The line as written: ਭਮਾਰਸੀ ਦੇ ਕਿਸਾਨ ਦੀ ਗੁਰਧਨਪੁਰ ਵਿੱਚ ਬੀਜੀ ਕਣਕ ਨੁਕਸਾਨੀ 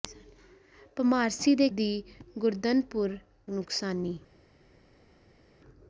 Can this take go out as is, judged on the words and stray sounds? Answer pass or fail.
fail